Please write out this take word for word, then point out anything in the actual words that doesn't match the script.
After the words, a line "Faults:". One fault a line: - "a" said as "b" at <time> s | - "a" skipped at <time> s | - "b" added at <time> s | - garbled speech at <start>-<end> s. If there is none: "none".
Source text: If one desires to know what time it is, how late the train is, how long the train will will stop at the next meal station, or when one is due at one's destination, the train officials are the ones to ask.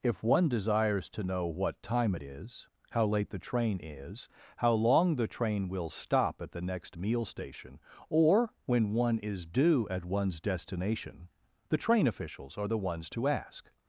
If one desires to know what time it is, how late the train is, how long the train will stop at the next meal station, or when one is due at one's destination, the train officials are the ones to ask.
Faults:
- "will" skipped at 5.9 s